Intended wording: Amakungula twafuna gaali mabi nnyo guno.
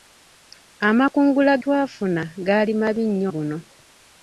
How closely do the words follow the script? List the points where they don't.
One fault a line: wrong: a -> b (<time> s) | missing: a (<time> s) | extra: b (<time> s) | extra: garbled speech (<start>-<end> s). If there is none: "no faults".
no faults